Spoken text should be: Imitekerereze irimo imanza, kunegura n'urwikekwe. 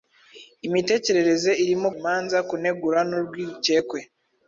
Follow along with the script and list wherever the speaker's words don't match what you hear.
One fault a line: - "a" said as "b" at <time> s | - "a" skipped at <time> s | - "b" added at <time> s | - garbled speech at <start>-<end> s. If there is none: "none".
none